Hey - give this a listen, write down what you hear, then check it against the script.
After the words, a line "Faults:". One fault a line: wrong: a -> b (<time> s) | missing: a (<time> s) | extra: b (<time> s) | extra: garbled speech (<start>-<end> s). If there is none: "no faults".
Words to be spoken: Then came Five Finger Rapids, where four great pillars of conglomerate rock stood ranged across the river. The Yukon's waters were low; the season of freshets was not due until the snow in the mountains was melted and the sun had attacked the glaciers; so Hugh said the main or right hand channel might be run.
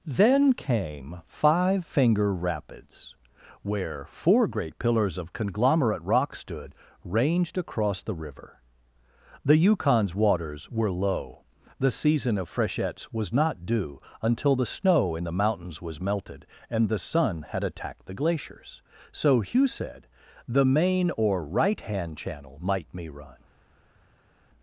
Then came Five Finger Rapids, where four great pillars of conglomerate rock stood ranged across the river. The Yukon's waters were low; the season of freshets was not due until the snow in the mountains was melted and the sun had attacked the glaciers; so Hugh said the main or right hand channel might me run.
Faults:
wrong: be -> me (22.9 s)